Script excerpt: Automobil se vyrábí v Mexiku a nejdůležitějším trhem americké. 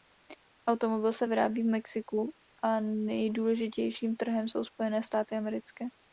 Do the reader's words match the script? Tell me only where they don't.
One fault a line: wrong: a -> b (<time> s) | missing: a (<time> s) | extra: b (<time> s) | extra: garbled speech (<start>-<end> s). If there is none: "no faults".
extra: jsou Spojené státy (4.5 s)